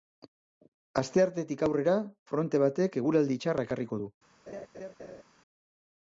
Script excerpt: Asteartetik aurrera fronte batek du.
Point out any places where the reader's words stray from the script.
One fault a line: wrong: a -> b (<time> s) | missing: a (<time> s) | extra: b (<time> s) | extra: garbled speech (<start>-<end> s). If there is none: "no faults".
extra: eguraldi txarra ekarriko (3.0 s)